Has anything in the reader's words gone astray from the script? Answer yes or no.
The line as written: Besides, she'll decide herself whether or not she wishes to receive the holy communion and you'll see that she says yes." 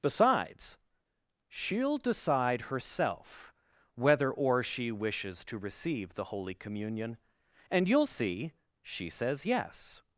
yes